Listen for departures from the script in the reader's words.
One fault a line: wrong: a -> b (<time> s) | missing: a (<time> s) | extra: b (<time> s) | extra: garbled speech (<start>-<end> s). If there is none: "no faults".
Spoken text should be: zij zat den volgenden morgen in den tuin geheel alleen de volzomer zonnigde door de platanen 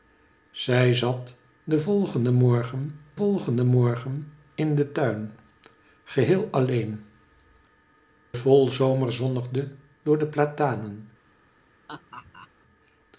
extra: volgenden morgen (3.1 s)
missing: de (7.0 s)